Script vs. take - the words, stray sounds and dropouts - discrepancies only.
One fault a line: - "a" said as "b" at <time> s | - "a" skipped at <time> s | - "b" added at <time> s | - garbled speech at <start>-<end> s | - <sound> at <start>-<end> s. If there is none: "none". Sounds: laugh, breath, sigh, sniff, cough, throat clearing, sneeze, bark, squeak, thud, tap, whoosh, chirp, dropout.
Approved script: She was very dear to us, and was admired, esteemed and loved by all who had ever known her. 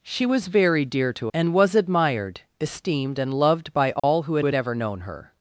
- "us" skipped at 1.3 s
- dropout at 4.0-4.0 s
- "had" added at 4.4 s